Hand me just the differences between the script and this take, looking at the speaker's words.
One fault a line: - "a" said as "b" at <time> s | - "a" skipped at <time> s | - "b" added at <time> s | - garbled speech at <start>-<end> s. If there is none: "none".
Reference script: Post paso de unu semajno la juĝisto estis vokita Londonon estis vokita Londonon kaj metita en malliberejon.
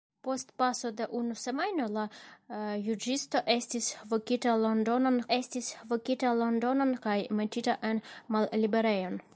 none